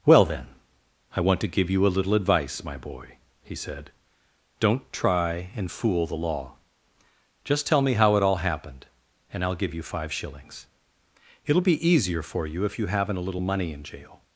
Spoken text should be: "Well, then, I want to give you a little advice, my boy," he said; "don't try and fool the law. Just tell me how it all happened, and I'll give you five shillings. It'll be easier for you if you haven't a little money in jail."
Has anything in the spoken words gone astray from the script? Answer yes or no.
no